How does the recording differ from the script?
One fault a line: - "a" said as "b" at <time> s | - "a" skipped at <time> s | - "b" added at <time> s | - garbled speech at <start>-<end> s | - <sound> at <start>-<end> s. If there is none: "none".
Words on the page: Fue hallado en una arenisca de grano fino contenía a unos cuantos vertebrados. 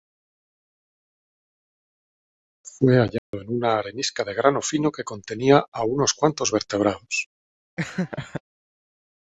- dropout at 3.2-3.3 s
- "que" added at 4.9 s
- laugh at 7.8-8.4 s